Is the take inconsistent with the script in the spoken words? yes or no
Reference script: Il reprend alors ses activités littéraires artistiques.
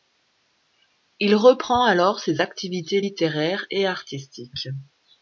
yes